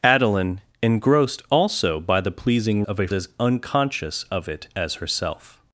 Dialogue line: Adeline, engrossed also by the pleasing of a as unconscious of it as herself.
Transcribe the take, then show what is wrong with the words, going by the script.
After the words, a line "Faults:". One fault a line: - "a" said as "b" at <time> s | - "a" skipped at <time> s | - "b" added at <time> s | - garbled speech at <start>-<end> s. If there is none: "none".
Adeline, engrossed also by the pleasing of a as unconscious of it as herself.
Faults:
none